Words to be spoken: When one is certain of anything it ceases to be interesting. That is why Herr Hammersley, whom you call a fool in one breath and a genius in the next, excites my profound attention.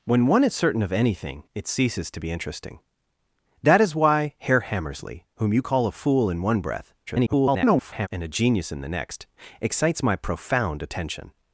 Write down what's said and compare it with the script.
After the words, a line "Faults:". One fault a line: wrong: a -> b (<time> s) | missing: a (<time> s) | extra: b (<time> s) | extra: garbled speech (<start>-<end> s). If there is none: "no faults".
When one is certain of anything it ceases to be interesting. That is why Herr Hammersley, whom you call a fool in one breath [garbled] and a genius in the next, excites my profound attention.
Faults:
extra: garbled speech (7.1-8.1 s)